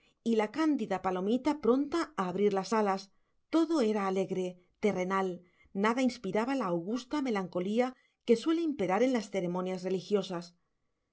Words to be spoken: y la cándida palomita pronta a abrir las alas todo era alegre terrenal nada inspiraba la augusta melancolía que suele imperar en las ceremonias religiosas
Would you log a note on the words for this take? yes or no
no